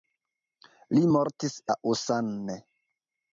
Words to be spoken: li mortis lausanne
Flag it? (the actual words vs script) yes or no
no